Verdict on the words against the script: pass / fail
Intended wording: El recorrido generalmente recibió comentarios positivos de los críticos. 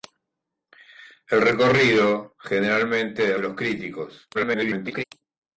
fail